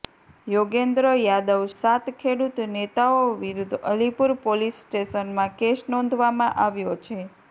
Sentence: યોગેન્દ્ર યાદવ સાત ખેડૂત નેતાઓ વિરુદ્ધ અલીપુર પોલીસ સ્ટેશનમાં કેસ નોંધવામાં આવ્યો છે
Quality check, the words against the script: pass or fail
pass